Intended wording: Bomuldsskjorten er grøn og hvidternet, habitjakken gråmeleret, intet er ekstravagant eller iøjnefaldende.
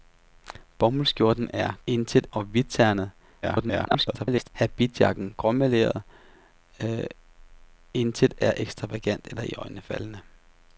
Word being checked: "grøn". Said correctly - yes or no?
no